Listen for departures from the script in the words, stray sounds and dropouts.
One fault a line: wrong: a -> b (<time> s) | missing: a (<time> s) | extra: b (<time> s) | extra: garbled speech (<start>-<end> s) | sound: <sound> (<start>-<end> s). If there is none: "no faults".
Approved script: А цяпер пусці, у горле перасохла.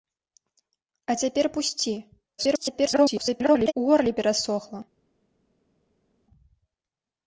extra: garbled speech (2.4-3.7 s)